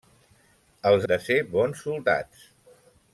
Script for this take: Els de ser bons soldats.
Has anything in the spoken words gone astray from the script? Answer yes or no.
no